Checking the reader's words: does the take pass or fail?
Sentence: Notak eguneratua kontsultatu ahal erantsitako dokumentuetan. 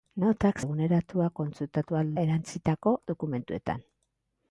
pass